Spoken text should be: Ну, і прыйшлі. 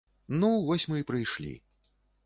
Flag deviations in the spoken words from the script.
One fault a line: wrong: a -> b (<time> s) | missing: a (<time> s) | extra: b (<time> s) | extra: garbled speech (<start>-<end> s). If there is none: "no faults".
extra: вось мы (0.7 s)